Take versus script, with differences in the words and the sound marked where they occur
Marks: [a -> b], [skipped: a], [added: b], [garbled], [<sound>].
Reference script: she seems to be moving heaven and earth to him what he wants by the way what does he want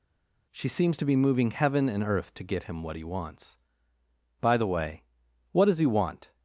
she seems to be moving heaven and earth to [added: get] him what he wants by the way what does he want